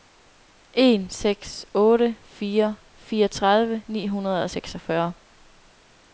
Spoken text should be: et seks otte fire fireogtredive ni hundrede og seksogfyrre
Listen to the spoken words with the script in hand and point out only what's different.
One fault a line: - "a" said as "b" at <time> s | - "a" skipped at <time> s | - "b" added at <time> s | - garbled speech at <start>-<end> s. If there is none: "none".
- "et" said as "en" at 0.7 s